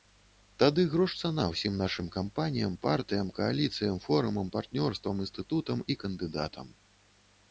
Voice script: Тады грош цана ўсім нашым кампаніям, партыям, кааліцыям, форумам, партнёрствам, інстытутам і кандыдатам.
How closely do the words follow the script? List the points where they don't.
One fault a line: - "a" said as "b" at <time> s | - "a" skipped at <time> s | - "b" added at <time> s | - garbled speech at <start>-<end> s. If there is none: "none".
none